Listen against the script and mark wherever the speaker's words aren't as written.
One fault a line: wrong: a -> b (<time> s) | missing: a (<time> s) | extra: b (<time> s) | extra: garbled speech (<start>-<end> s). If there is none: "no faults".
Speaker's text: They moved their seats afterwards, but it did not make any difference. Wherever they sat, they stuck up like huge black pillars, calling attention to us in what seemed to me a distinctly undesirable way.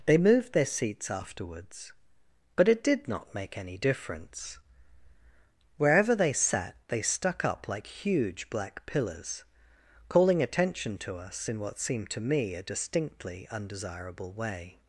no faults